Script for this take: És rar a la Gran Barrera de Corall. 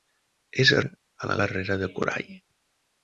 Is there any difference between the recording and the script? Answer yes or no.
yes